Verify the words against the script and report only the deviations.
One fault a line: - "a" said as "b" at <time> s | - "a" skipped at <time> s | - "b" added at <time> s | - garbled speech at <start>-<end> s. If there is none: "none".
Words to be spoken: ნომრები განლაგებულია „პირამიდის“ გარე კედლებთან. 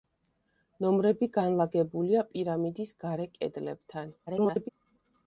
- garbled speech at 4.3-4.7 s